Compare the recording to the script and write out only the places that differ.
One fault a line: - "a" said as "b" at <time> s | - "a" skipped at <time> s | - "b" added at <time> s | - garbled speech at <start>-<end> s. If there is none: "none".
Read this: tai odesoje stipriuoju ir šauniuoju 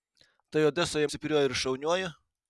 none